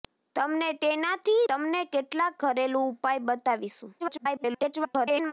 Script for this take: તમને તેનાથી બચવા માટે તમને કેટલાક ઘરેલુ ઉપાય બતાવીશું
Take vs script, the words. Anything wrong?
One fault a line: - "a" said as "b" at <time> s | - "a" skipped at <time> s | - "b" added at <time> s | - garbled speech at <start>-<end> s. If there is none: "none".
- "બચવા માટે" skipped at 1.4 s
- garbled speech at 4.0-5.3 s